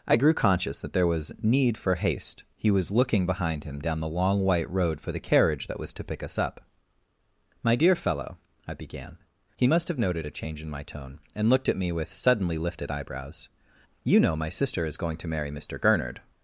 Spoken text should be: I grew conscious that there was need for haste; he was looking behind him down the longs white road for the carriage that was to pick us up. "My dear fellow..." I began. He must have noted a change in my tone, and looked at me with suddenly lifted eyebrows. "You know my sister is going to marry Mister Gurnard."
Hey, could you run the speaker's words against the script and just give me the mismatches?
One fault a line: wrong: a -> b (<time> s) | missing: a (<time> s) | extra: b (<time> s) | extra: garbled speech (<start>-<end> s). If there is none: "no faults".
wrong: longs -> long (4.1 s)